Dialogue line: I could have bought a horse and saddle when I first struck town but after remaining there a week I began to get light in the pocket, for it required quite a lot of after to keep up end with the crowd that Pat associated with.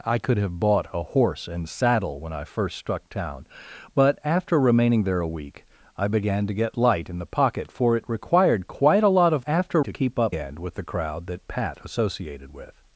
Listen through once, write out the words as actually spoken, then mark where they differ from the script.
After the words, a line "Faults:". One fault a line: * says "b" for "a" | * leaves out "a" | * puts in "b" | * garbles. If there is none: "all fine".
I could have bought a horse and saddle when I first struck town but after remaining there a week I began to get light in the pocket, for it required quite a lot of after to keep up end with the crowd that Pat associated with.
Faults:
all fine